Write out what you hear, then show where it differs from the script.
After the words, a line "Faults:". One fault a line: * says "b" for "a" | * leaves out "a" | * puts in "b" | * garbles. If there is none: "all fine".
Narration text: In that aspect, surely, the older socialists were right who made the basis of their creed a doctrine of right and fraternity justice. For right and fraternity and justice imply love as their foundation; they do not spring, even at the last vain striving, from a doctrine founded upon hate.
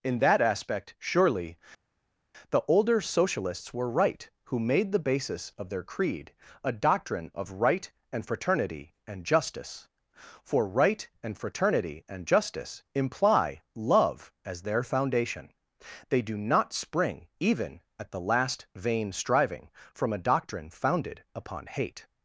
In that aspect, surely, the older socialists were right who made the basis of their creed a doctrine of right and fraternity and justice. For right and fraternity and justice imply love as their foundation; they do not spring, even at the last vain striving, from a doctrine founded upon hate.
Faults:
* puts in "and"